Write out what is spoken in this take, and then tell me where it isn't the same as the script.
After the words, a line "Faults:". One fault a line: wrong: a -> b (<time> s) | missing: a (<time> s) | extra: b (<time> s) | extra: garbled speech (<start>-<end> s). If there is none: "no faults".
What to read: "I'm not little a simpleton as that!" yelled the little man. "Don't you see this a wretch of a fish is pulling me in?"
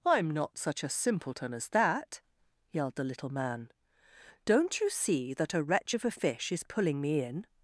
"I'm not such a simpleton as that!" yelled the little man. "Don't you see that a wretch of a fish is pulling me in?"
Faults:
wrong: little -> such (0.6 s)
wrong: this -> that (5.3 s)